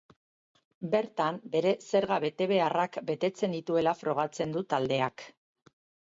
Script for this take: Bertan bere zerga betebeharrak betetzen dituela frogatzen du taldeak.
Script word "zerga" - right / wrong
right